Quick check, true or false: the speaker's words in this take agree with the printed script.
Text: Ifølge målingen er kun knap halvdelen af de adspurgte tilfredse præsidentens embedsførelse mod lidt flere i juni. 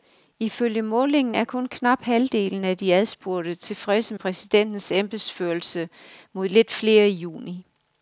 true